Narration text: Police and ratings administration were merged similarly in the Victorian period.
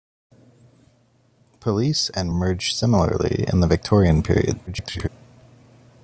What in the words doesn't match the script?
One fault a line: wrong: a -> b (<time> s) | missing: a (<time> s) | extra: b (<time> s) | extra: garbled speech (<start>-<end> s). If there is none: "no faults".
missing: ratings administration were (2.3 s)
extra: garbled speech (4.7-5.1 s)